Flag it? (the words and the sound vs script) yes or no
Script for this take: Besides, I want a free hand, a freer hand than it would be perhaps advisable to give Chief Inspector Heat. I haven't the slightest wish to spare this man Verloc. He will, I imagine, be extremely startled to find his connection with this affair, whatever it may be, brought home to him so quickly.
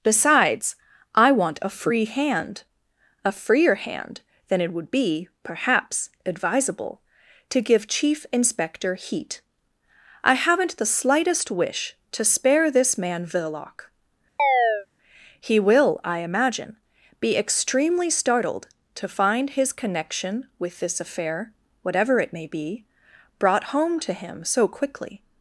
yes